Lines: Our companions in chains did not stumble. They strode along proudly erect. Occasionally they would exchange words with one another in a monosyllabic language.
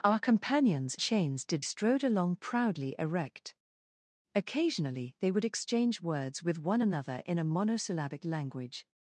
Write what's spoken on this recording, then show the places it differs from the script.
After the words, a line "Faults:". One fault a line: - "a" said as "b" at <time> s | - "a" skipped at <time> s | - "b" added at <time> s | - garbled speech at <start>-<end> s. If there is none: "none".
Our companions chains did strode along proudly erect. Occasionally they would exchange words with one another in a monosyllabic language.
Faults:
- "in" skipped at 0.9 s
- "not stumble They" skipped at 1.7 s